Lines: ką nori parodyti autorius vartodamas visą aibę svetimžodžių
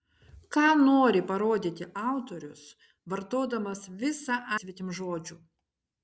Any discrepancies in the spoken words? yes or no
yes